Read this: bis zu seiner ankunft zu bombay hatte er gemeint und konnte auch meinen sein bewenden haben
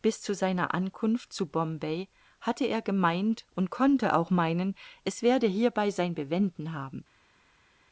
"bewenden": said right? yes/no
yes